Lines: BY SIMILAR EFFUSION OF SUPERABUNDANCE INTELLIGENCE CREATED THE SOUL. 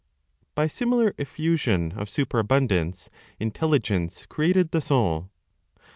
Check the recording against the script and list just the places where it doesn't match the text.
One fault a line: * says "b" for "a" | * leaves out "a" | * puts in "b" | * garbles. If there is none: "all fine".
all fine